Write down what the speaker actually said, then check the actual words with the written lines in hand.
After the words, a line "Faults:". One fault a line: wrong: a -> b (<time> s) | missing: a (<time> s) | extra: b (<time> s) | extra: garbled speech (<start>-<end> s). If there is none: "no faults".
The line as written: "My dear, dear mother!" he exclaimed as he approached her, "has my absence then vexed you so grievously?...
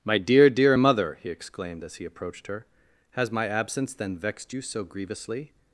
"My dear, dear mother!" he exclaimed as he approached her, "has my absence then vexed you so grievously?...
Faults:
no faults